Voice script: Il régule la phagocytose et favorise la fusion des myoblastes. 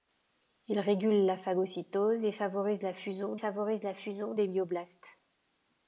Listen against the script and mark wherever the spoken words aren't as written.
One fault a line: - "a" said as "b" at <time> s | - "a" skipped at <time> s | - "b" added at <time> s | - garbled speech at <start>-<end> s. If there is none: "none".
- "favorise la fusion" added at 3.3 s